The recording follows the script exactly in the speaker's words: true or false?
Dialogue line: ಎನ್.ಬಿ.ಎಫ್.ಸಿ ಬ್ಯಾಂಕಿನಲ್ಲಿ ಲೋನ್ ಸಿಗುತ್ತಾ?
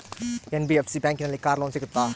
false